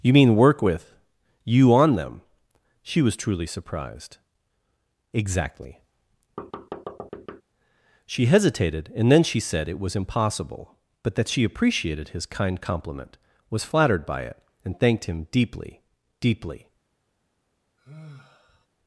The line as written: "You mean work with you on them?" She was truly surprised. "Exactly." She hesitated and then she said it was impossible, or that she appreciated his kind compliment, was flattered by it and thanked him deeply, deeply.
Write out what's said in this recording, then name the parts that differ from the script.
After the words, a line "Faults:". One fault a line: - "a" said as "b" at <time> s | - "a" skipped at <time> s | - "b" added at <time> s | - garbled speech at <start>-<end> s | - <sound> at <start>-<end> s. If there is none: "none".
"You mean work with you on them?" She was truly surprised. "Exactly." She hesitated and then she said it was impossible, but that she appreciated his kind compliment, was flattered by it and thanked him deeply, deeply.
Faults:
- thud at 6.4-7.4 s
- "or" said as "but" at 11.0 s
- sigh at 17.8-18.7 s